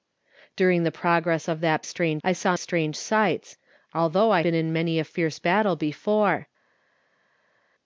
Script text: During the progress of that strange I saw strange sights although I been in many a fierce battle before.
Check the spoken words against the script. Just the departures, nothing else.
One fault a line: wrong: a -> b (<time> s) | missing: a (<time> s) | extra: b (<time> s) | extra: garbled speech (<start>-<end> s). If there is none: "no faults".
no faults